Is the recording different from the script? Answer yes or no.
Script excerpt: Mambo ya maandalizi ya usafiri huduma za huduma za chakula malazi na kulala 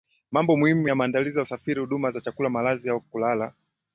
yes